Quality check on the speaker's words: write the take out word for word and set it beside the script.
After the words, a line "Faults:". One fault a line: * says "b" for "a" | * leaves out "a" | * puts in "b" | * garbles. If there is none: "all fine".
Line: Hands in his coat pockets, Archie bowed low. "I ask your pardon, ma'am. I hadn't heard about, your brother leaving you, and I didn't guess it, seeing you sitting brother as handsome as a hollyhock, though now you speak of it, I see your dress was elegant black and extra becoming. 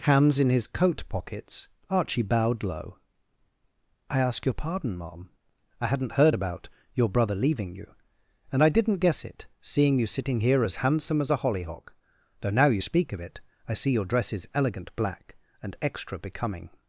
Hands in his coat pockets, Archie bowed low. "I ask your pardon, ma'am. I hadn't heard about, your brother leaving you, and I didn't guess it, seeing you sitting here as handsome as a hollyhock, though now you speak of it, I see your dress is elegant black and extra becoming.
Faults:
* says "here" for "brother"
* says "is" for "was"